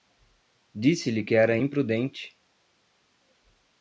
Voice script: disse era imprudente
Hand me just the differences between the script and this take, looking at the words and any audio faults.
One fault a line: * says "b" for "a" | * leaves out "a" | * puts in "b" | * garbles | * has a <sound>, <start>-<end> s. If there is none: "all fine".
* puts in "lhe que"